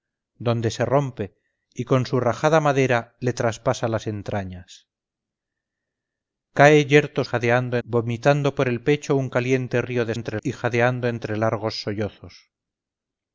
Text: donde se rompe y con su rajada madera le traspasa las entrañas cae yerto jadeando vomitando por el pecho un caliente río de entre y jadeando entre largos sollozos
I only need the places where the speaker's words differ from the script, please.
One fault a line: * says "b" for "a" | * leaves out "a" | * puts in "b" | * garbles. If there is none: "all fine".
all fine